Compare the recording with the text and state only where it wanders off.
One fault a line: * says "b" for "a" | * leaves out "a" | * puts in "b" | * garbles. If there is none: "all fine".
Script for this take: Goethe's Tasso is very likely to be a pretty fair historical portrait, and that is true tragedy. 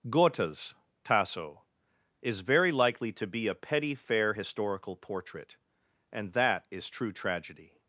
* says "petty" for "pretty"